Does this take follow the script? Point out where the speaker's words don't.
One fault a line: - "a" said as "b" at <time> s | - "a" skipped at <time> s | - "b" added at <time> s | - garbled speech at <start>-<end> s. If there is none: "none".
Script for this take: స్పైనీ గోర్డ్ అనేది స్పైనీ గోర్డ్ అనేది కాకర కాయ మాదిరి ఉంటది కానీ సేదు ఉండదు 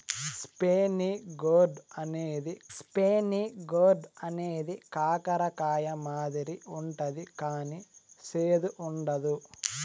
none